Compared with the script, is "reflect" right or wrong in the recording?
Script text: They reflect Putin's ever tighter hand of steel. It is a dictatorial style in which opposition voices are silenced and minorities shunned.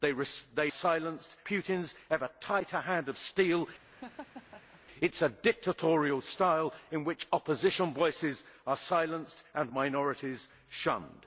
wrong